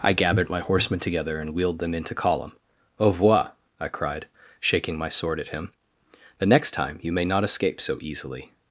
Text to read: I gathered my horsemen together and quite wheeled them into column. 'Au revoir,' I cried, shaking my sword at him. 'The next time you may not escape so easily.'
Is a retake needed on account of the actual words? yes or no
yes